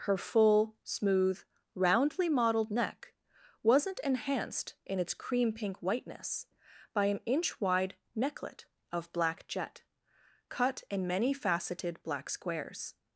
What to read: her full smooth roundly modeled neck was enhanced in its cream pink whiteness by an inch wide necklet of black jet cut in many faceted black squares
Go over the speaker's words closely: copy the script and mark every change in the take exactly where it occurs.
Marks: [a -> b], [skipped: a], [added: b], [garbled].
her full smooth roundly modeled neck [was -> wasn't] enhanced in its cream pink whiteness by an inch wide necklet of black jet cut in many faceted black squares